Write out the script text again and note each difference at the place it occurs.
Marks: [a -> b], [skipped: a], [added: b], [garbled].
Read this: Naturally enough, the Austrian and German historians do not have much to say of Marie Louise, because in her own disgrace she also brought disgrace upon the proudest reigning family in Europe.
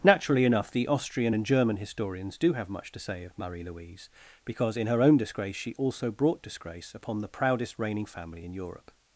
Naturally enough, the Austrian and German historians do [skipped: not] have much to say of Marie Louise, because in her own disgrace she also brought disgrace upon the proudest reigning family in Europe.